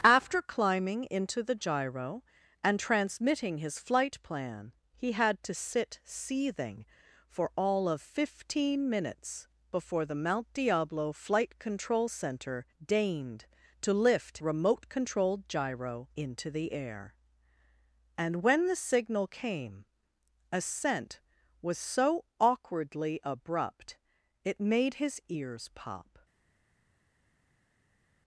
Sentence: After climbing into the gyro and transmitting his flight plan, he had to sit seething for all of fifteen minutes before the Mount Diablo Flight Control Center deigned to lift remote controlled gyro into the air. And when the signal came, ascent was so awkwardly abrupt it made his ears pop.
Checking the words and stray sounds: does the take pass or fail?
pass